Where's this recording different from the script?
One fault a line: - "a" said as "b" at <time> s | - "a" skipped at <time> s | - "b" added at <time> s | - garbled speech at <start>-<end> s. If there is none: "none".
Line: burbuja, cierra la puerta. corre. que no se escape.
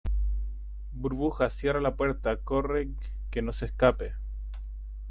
none